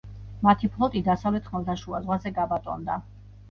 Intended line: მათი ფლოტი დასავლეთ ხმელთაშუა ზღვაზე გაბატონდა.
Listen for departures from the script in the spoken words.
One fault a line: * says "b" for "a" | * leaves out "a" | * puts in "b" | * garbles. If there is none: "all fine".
all fine